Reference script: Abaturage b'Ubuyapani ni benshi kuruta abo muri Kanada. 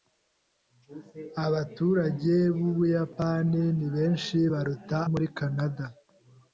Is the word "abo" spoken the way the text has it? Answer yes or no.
no